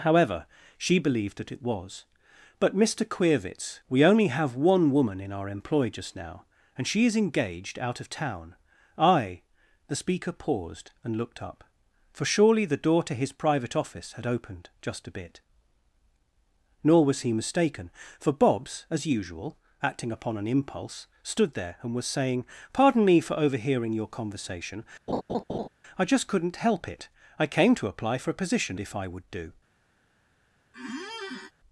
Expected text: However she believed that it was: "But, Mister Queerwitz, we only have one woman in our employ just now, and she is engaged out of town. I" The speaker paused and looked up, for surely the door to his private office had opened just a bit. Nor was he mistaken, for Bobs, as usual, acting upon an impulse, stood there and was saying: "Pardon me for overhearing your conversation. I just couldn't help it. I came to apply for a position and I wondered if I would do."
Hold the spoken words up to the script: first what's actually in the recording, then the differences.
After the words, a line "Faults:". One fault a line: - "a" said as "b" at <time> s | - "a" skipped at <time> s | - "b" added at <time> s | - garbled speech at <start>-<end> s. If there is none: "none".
However she believed that it was: "But, Mister Queerwitz, we only have one woman in our employ just now, and she is engaged out of town. I" The speaker paused and looked up, for surely the door to his private office had opened just a bit. Nor was he mistaken, for Bobs, as usual, acting upon an impulse, stood there and was saying: "Pardon me for overhearing your conversation. I just couldn't help it. I came to apply for a position if I would do."
Faults:
- "and I wondered" skipped at 28.8 s